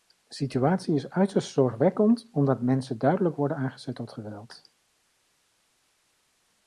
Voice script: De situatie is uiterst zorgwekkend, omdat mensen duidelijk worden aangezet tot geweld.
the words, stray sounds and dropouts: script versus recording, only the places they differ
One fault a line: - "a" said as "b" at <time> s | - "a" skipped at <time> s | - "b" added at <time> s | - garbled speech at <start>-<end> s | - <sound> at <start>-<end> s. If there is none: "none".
none